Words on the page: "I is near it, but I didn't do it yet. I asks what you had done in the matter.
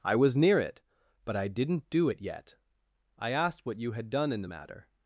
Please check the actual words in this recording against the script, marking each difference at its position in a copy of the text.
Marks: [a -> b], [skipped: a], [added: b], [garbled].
"I [is -> was] near it, but I didn't do it yet. I [asks -> asked] what you had done in the matter.